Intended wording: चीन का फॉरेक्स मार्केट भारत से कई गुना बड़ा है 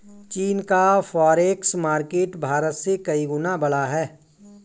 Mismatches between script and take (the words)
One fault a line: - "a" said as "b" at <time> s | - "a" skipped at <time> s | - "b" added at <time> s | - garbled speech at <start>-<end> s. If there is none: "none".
none